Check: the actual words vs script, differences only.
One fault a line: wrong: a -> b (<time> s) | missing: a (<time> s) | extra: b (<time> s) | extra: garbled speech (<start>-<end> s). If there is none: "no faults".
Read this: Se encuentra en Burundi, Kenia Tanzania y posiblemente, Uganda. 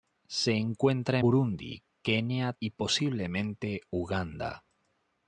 missing: en (1.2 s)
missing: Tanzania (2.5 s)